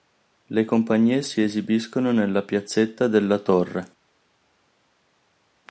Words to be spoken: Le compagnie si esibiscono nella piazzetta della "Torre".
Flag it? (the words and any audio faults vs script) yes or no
no